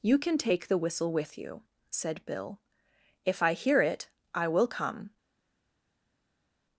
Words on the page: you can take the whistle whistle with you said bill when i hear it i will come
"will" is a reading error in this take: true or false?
false